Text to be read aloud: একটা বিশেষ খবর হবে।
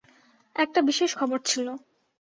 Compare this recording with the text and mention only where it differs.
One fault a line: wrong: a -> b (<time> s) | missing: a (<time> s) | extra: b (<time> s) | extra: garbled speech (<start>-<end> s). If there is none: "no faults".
wrong: হবে -> ছিল (1.4 s)